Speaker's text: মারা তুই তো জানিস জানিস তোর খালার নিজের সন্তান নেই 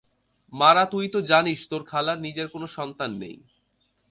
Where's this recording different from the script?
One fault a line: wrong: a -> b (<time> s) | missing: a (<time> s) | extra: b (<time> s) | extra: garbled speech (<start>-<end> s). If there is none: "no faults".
missing: জানিস (1.6 s)
extra: কোনো (2.5 s)